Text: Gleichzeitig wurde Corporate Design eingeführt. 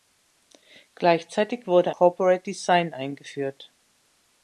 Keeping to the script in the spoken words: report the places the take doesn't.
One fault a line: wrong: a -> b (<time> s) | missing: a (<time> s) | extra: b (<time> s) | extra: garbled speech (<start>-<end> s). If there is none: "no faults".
no faults